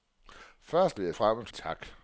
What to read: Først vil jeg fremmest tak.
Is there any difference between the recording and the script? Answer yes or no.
no